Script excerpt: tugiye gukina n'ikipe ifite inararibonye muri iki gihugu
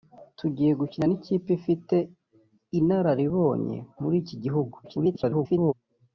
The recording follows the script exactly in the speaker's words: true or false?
false